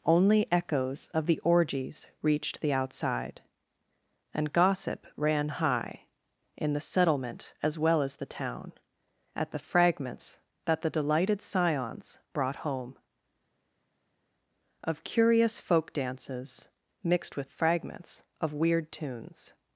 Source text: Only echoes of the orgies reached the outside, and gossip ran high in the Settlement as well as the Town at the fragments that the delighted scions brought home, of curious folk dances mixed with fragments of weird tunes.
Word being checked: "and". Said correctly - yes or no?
yes